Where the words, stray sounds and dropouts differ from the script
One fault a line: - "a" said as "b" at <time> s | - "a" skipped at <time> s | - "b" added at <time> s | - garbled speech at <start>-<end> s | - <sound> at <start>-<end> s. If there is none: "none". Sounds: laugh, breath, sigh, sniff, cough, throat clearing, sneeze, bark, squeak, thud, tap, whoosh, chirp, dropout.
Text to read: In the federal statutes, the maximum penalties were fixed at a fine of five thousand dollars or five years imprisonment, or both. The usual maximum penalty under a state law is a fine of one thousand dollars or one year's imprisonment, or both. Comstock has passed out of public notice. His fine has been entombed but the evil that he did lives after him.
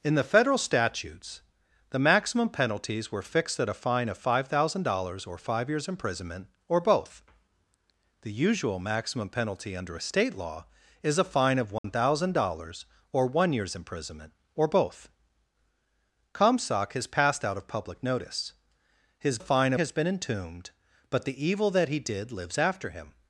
- dropout at 11.8-11.8 s